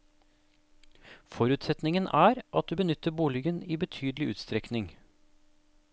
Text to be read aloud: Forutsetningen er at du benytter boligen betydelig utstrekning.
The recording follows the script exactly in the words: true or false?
false